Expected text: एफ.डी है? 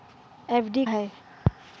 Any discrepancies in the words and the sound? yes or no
no